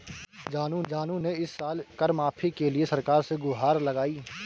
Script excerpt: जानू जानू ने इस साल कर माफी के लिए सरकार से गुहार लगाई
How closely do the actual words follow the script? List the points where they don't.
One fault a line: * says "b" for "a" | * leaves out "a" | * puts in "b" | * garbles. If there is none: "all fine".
all fine